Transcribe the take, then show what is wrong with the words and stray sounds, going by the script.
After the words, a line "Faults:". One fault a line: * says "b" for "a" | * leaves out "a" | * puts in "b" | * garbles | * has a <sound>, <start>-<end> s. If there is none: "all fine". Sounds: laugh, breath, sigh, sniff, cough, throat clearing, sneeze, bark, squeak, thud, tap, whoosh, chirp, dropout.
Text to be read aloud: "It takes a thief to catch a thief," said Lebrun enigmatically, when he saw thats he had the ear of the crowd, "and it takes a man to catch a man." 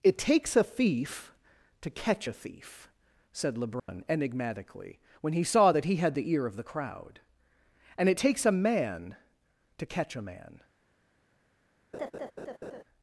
"It takes a thief to catch a thief," said Lebrun enigmatically, when he saw that he had the ear of the crowd, "and it takes a man to catch a man."
Faults:
* has a dropout, 3.8-3.9 s
* says "that" for "thats"
* has a laugh, 11.9-12.8 s